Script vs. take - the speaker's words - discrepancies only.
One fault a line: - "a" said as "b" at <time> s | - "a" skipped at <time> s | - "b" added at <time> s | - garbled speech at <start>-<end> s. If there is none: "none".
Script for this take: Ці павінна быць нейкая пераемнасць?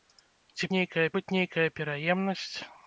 - "павінна" said as "нейкая" at 0.8 s